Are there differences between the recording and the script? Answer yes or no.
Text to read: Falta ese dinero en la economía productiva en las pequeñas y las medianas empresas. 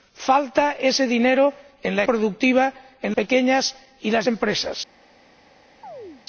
yes